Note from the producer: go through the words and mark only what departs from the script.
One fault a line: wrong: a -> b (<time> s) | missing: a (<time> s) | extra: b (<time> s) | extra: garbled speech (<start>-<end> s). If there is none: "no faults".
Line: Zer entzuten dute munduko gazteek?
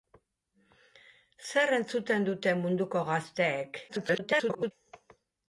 extra: garbled speech (3.9-4.7 s)